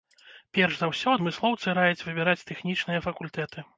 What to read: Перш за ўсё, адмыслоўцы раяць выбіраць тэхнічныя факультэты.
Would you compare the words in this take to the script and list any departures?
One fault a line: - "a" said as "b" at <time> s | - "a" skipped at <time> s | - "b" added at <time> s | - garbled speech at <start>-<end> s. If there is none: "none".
none